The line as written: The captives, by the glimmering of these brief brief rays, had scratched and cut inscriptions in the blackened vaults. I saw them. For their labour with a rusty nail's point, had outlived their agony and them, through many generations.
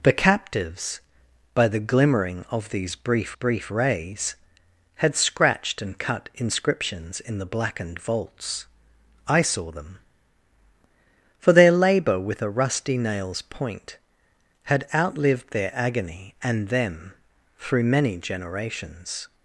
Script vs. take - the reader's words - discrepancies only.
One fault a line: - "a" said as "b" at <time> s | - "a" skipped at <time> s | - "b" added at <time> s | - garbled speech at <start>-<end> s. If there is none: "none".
none